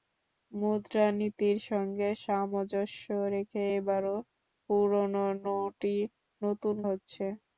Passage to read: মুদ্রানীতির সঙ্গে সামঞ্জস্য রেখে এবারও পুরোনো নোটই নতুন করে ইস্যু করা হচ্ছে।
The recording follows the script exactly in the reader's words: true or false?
false